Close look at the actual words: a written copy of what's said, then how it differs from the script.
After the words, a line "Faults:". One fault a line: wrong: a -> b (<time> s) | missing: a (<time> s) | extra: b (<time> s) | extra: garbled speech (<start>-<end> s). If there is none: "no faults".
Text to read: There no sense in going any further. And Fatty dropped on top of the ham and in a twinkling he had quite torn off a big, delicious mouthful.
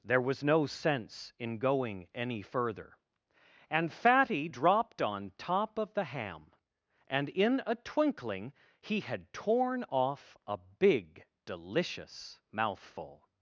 There was no sense in going any further. And Fatty dropped on top of the ham and in a twinkling he had torn off a big, delicious mouthful.
Faults:
extra: was (0.2 s)
missing: quite (9.3 s)